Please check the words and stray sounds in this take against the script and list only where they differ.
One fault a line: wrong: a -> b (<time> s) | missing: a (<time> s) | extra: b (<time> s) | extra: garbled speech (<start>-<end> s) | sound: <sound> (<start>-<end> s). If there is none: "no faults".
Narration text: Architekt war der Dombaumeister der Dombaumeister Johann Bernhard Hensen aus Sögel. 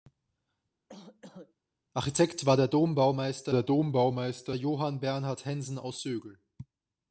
sound: cough (0.9-1.5 s)